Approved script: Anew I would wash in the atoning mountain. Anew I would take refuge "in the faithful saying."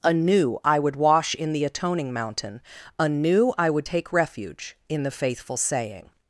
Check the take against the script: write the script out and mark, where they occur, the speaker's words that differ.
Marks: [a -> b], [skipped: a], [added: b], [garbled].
Anew I would wash in the atoning mountain. Anew I would take refuge "in the faithful saying."